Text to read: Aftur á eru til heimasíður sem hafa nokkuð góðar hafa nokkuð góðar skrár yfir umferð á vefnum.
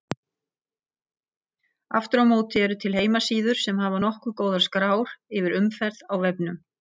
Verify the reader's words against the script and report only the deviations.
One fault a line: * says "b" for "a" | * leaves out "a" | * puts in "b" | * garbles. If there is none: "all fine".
* puts in "móti"
* leaves out "hafa nokkuð góðar"